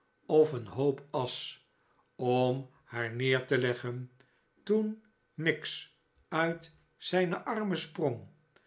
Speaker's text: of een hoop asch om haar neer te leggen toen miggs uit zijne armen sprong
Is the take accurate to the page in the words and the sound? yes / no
yes